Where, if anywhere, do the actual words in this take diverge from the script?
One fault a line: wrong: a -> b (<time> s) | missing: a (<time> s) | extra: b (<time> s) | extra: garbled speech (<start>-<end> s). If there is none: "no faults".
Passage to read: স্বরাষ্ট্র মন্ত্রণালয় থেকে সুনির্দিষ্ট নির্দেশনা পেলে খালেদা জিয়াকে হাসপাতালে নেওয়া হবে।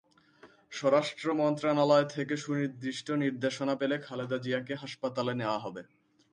no faults